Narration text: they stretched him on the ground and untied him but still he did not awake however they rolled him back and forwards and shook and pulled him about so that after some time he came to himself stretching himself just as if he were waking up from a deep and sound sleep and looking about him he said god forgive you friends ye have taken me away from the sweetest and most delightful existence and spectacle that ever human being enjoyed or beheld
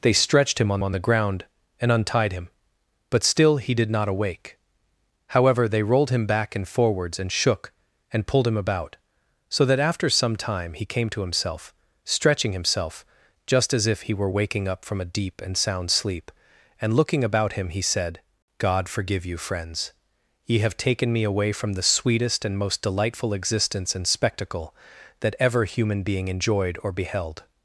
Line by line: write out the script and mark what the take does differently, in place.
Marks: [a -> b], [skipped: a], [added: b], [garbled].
they stretched him on [added: on] the ground and untied him but still he did not awake however they rolled him back and forwards and shook and pulled him about so that after some time he came to himself stretching himself just as if he were waking up from a deep and sound sleep and looking about him he said god forgive you friends ye have taken me away from the sweetest and most delightful existence and spectacle that ever human being enjoyed or beheld